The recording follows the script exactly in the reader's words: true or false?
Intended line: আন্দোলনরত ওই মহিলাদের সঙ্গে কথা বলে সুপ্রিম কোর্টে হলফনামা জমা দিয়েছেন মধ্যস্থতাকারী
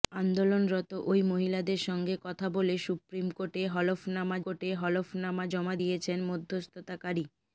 false